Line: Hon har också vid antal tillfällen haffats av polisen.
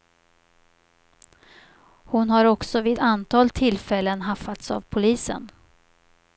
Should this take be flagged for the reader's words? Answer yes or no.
no